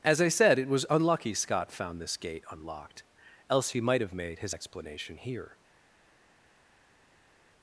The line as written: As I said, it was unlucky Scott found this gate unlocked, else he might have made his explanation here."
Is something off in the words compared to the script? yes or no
no